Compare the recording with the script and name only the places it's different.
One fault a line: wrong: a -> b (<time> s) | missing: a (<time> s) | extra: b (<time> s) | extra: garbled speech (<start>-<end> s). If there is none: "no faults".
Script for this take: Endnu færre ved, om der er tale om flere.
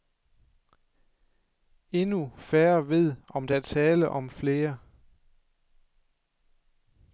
no faults